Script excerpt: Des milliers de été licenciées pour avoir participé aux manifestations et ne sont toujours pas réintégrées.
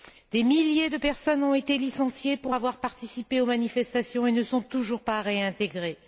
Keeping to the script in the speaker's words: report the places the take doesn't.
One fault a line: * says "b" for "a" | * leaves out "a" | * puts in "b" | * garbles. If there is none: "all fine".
* puts in "personnes ont"